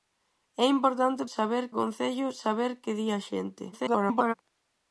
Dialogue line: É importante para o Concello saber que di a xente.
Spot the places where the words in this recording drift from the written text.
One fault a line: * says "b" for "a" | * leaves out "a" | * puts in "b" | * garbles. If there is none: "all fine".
* says "saber" for "para"
* garbles